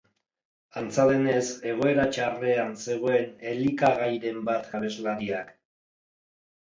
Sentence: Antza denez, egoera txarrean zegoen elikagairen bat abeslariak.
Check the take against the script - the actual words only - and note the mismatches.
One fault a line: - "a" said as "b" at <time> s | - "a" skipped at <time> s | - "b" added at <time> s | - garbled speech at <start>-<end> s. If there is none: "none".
none